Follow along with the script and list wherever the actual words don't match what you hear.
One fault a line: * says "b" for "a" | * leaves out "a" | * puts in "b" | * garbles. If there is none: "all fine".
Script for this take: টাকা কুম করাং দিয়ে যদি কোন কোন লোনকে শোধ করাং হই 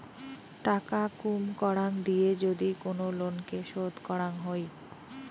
* leaves out "কোন"